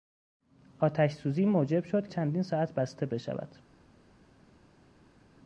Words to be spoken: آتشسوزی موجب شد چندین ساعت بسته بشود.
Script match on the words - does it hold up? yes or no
yes